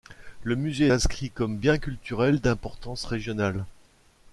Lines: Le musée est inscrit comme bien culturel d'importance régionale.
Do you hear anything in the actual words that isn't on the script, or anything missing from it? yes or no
yes